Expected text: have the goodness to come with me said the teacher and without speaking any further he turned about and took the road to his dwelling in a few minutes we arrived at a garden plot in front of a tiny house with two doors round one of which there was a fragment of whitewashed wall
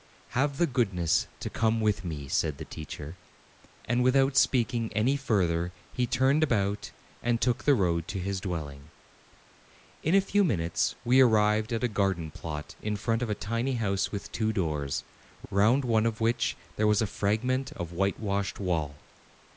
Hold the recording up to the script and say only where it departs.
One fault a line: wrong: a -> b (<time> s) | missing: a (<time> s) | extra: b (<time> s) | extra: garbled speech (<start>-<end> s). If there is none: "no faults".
no faults